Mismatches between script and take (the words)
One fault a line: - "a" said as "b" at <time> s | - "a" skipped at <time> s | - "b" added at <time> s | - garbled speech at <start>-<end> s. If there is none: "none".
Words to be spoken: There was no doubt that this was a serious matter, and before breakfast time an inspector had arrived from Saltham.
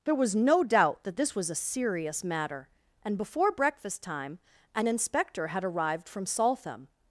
none